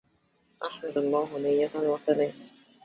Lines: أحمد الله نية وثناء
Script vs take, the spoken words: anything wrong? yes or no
no